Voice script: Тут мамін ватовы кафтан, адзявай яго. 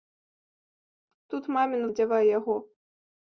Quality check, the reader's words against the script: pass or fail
fail